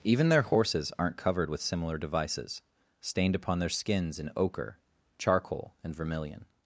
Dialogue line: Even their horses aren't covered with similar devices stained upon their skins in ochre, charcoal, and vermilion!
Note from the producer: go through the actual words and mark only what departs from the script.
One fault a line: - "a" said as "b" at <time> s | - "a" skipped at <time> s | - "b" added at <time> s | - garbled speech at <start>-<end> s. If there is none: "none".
none